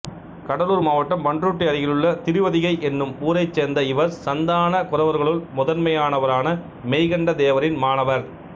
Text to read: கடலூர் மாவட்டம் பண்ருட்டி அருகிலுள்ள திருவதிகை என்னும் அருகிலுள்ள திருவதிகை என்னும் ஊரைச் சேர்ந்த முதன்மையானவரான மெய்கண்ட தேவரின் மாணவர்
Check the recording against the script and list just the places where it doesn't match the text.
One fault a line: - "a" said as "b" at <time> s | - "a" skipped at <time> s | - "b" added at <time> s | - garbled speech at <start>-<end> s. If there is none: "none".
- "அருகிலுள்ள திருவதிகை என்னும் ஊரைச் சேர்ந்த" said as "ஊரைச் சேர்ந்த இவர் சந்தான குரவர்களுள்" at 3.2 s